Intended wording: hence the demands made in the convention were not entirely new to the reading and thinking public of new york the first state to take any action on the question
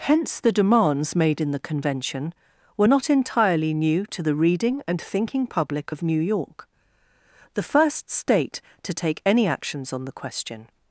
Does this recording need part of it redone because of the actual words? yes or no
yes